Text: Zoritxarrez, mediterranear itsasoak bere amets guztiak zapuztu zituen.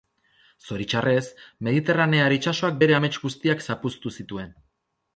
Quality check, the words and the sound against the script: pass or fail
pass